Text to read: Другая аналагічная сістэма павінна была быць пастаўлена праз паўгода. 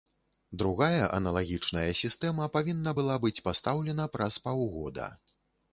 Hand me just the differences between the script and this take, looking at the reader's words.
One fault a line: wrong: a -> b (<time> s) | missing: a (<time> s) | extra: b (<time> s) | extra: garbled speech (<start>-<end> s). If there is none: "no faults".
no faults